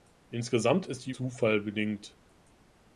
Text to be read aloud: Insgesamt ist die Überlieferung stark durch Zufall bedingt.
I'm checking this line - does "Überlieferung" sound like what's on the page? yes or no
no